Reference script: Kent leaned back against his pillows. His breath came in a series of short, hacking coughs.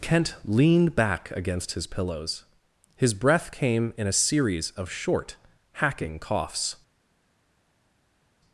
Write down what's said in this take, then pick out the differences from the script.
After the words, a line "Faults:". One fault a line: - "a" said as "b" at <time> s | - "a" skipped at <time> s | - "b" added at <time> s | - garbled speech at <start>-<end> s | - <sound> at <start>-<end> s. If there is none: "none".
Kent leaned back against his pillows. His breath came in a series of short, hacking coughs.
Faults:
none